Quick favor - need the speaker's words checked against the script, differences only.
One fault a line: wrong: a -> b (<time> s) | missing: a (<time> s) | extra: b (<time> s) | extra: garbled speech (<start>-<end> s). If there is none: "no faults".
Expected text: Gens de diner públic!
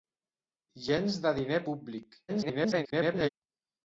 extra: garbled speech (2.3-3.3 s)